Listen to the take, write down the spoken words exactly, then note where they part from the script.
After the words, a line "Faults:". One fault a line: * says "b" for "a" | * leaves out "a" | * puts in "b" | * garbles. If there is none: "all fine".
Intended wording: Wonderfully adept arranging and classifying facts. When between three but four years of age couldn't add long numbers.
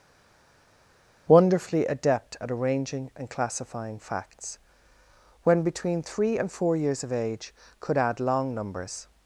Wonderfully adept at arranging and classifying facts. When between three and four years of age could add long numbers.
Faults:
* puts in "at"
* says "and" for "but"
* says "could" for "couldn't"